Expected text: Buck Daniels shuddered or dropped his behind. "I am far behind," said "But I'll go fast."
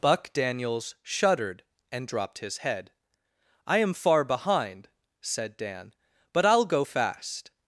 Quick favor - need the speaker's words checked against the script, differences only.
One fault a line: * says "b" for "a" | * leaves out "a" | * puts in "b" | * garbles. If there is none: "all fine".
* says "and" for "or"
* says "head" for "behind"
* puts in "Dan"